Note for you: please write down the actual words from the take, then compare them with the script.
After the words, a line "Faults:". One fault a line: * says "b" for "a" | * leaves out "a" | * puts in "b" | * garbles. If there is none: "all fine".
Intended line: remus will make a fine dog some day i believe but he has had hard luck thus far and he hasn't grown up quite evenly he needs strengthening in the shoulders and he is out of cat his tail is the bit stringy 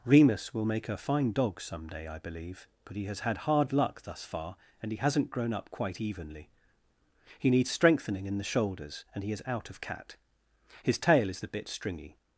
remus will make a fine dog some day i believe but he has had hard luck thus far and he hasn't grown up quite evenly he needs strengthening in the shoulders and he is out of cat his tail is the bit stringy
Faults:
all fine